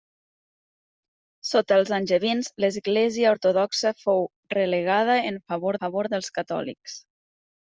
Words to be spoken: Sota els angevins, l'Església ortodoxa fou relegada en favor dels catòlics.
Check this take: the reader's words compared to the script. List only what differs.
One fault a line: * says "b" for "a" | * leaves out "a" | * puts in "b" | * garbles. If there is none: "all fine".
* puts in "favor"